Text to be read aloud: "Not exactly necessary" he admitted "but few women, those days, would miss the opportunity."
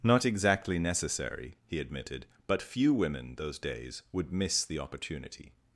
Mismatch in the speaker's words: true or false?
false